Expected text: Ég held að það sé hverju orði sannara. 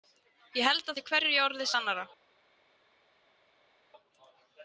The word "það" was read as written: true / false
false